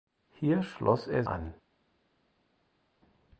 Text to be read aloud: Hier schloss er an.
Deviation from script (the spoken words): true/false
false